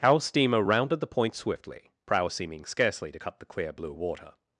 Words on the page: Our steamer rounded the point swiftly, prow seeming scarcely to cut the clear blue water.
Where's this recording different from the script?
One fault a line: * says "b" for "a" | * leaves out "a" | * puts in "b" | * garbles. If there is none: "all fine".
all fine